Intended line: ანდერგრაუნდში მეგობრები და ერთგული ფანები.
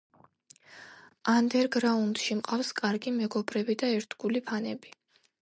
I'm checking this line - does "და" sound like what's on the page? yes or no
yes